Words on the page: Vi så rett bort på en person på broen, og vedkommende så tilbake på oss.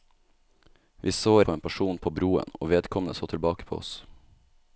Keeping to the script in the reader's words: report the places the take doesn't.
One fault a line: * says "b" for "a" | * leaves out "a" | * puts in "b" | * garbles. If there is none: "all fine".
* leaves out "rett bort"